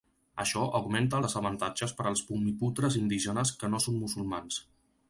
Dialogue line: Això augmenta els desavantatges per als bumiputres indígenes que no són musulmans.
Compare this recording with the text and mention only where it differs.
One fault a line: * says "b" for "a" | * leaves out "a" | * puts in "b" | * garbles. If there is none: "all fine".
* leaves out "els"